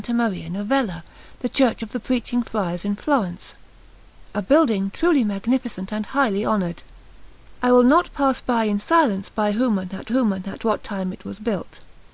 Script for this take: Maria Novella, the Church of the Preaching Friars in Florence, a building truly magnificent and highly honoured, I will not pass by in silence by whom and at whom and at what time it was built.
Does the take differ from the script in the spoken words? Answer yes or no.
no